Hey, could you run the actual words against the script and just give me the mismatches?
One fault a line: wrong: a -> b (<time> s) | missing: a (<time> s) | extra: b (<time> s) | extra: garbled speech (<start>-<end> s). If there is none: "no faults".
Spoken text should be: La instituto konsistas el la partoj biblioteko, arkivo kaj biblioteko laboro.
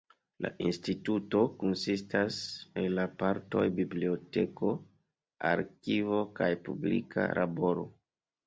wrong: biblioteko -> publika (6.7 s)